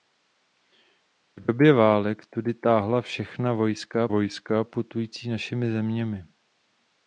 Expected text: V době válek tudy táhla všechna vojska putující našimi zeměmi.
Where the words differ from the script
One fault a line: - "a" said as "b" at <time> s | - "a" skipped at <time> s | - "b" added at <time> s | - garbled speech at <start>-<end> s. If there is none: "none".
- "vojska" added at 4.1 s